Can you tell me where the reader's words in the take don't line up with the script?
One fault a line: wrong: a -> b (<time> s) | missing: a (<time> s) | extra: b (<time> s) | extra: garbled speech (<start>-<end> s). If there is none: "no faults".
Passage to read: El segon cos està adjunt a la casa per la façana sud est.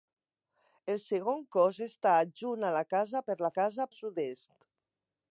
wrong: façana -> casa (3.6 s)